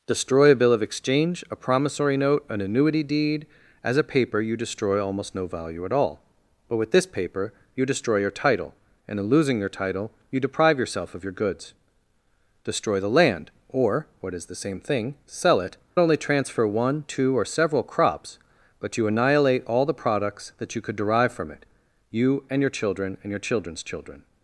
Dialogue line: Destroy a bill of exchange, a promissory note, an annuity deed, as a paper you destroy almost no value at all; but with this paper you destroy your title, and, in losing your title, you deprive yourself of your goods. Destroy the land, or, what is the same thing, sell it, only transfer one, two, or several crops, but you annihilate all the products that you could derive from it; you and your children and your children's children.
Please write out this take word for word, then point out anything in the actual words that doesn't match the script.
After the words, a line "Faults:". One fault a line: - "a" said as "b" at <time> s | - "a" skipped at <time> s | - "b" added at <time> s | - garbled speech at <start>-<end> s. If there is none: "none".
Destroy a bill of exchange, a promissory note, an annuity deed, as a paper you destroy almost no value at all; but with this paper you destroy your title, and, in losing your title, you deprive yourself of your goods. Destroy the land, or, what is the same thing, sell it, only transfer one, two, or several crops, but you annihilate all the products that you could derive from it; you and your children and your children's children.
Faults:
none